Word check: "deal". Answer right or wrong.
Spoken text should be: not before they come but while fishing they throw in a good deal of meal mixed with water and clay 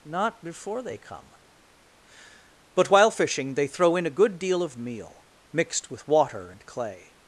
right